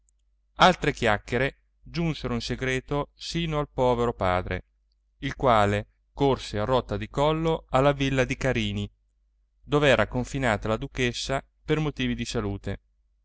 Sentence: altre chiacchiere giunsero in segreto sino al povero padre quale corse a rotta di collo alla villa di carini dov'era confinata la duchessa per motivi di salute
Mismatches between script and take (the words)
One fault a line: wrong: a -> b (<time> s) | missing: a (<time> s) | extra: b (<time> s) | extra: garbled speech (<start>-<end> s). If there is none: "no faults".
extra: il (5.2 s)